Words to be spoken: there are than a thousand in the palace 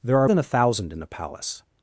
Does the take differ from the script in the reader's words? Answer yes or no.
no